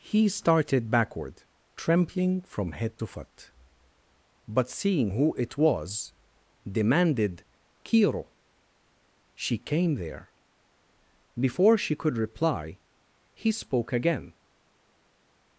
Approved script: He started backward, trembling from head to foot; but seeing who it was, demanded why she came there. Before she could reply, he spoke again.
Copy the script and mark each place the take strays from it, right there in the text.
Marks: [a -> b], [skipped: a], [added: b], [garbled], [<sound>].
He started backward, trembling from head to foot; but seeing who it was, demanded [why -> kiro] she came there. Before she could reply, he spoke again.